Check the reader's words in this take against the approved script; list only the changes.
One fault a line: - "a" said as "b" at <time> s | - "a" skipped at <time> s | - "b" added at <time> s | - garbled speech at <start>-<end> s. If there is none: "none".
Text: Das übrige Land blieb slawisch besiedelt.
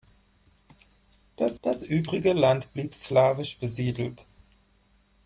- "das" added at 1.6 s